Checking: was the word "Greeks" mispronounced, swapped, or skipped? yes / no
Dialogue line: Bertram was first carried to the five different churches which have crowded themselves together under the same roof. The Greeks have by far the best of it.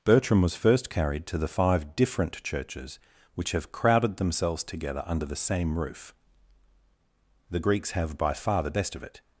no